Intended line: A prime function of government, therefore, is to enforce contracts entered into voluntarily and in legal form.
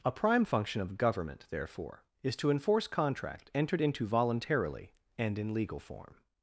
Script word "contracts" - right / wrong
wrong